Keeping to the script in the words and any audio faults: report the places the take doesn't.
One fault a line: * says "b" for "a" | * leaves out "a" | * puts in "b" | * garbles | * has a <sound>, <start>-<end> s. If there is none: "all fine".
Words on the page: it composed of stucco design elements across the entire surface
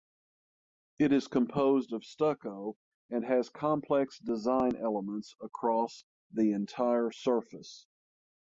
* puts in "is"
* puts in "and has complex"